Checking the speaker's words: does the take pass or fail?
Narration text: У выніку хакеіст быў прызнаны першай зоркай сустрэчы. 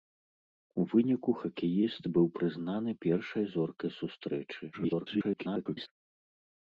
fail